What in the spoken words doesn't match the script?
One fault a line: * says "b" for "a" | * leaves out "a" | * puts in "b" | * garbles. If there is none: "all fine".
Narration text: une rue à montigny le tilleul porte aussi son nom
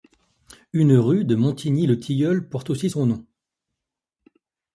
* says "de" for "à"